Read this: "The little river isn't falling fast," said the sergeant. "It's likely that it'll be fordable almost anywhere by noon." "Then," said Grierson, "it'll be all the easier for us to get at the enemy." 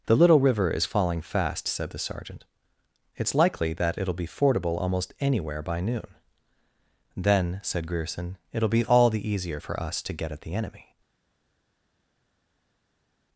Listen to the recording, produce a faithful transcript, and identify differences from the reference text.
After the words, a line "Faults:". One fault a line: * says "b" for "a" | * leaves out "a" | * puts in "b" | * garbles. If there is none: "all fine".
"The little river is falling fast," said the sergeant. "It's likely that it'll be fordable almost anywhere by noon." "Then," said Grierson, "it'll be all the easier for us to get at the enemy."
Faults:
* says "is" for "isn't"